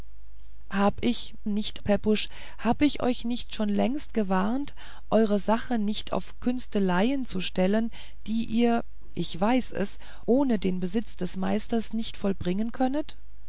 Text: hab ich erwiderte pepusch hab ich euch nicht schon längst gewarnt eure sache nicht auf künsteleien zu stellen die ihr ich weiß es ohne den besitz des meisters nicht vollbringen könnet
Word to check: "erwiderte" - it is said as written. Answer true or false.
false